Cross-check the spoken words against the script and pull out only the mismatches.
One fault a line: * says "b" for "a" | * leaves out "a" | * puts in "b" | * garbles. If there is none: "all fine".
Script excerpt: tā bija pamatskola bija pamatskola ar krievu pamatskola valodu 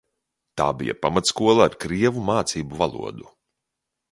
* leaves out "bija pamatskola"
* says "mācību" for "pamatskola"